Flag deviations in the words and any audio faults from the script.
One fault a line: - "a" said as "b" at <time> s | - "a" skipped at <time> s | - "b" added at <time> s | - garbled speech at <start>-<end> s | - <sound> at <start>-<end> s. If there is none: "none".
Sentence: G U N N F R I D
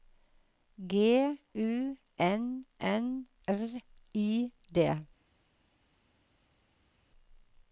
- "F" skipped at 3.3 s